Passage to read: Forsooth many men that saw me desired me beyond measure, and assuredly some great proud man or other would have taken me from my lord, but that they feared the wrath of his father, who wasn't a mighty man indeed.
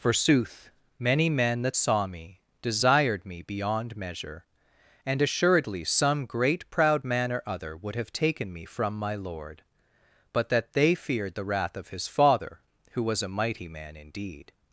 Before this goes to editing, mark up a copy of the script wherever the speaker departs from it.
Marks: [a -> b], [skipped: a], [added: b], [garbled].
Forsooth many men that saw me desired me beyond measure, and assuredly some great proud man or other would have taken me from my lord, but that they feared the wrath of his father, who [wasn't -> was] a mighty man indeed.